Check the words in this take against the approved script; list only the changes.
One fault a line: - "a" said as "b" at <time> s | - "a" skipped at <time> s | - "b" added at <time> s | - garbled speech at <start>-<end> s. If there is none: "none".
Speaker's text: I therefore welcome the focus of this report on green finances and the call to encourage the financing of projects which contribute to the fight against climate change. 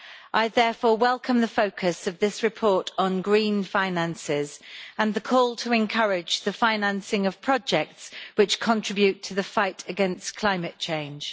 none